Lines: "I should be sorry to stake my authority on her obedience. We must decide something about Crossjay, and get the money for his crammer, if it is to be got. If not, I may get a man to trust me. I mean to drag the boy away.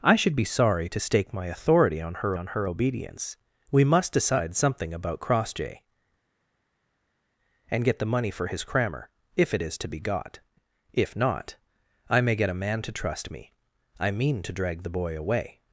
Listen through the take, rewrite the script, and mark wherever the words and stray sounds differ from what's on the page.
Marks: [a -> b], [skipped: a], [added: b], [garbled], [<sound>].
"I should be sorry to stake my authority on her [added: on her] obedience. We must decide something about Crossjay, and get the money for his crammer, if it is to be got. If not, I may get a man to trust me. I mean to drag the boy away.